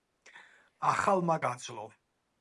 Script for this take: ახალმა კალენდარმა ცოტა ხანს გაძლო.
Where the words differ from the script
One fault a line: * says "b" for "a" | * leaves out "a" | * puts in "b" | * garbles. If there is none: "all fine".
* leaves out "კალენდარმა ცოტა ხანს"